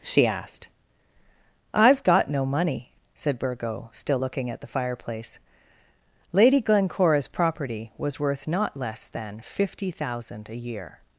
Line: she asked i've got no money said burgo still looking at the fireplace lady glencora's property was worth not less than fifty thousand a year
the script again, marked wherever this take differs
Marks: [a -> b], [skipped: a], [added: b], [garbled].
she asked i've got no money said burgo still looking at the fireplace lady glencora's property was worth not less than fifty thousand a year